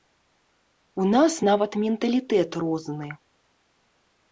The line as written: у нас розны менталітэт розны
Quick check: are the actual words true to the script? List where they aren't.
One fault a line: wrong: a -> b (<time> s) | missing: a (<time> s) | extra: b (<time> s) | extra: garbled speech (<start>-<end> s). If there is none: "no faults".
wrong: розны -> нават (1.5 s)